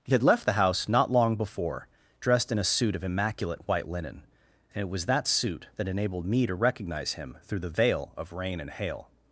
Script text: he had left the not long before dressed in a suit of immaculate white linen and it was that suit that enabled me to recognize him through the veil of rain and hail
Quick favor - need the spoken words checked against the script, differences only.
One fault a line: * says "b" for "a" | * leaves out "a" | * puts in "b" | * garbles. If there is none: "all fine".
* puts in "house"